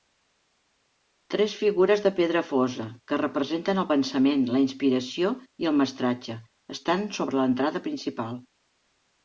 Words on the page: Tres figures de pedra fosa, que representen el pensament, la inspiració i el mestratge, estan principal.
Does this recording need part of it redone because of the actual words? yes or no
yes